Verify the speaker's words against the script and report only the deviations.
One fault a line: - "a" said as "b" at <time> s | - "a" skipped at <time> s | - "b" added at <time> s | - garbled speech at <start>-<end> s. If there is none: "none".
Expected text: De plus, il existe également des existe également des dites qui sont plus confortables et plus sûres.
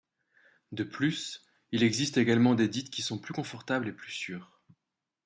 - "existe également des" skipped at 2.7 s